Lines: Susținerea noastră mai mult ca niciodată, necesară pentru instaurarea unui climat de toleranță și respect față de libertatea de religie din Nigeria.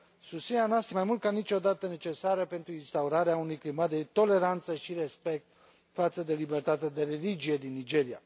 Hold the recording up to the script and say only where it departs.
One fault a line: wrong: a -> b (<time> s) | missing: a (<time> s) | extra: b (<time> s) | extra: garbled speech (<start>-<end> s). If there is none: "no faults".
no faults